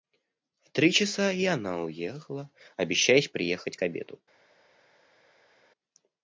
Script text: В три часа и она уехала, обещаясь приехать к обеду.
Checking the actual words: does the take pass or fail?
pass